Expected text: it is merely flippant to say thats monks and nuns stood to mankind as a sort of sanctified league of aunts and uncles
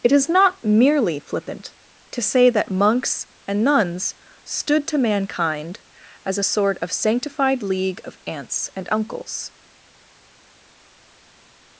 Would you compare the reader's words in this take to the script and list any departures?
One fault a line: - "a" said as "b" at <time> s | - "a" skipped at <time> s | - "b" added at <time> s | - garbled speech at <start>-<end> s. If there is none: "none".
- "not" added at 0.3 s
- "thats" said as "that" at 2.5 s